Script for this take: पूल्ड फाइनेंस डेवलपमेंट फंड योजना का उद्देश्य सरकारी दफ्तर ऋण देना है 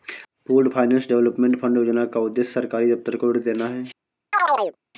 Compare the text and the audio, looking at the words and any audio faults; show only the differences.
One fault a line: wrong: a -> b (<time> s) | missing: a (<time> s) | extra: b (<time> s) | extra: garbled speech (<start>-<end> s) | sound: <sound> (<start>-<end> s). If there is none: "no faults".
extra: को (3.1 s)
sound: chirp (4.3-4.8 s)